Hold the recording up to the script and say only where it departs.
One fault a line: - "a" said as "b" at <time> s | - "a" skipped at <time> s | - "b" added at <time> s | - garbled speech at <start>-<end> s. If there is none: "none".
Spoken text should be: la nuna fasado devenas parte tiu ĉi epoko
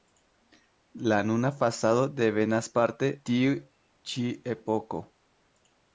none